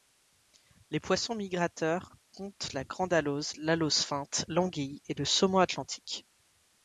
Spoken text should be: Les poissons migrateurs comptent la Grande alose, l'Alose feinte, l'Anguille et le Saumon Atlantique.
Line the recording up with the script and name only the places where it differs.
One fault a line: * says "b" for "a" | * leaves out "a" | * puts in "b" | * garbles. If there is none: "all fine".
all fine